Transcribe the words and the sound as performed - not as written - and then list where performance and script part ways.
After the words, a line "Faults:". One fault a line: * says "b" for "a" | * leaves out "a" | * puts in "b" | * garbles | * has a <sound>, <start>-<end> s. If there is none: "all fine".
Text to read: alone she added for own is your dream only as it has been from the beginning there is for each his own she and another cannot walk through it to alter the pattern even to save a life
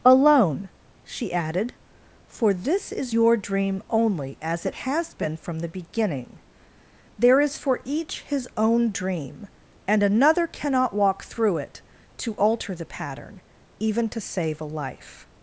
alone she added for this is your dream only as it has been from the beginning there is for each his own dream and another cannot walk through it to alter the pattern even to save a life
Faults:
* says "this" for "own"
* says "dream" for "she"